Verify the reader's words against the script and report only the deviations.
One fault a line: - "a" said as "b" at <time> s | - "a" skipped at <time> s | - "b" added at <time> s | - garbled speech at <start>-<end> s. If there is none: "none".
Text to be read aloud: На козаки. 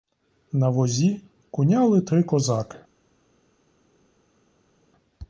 - "возі куняли три" added at 0.7 s